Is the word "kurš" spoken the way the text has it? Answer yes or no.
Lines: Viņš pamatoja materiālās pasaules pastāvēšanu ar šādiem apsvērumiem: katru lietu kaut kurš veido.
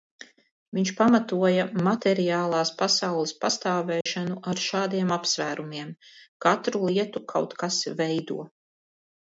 no